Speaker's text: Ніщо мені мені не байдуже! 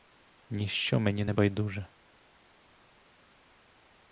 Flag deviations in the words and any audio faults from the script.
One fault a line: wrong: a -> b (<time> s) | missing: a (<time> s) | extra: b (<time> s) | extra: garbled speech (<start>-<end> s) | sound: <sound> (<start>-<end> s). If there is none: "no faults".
missing: мені (1.2 s)